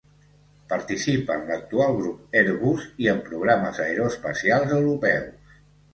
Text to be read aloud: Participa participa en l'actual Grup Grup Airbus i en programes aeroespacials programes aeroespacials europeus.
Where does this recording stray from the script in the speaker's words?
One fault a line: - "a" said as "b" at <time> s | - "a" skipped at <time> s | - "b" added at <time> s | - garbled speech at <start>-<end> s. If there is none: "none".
- "participa" skipped at 1.4 s
- "Grup" skipped at 2.4 s
- "programes aeroespacials" skipped at 4.8 s